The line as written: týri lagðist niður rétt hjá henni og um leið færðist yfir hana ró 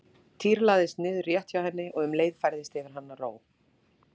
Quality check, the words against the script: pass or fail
pass